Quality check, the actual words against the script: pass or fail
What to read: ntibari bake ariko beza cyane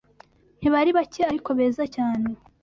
pass